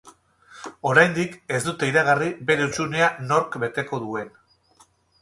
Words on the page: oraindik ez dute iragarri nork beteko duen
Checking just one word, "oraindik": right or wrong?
right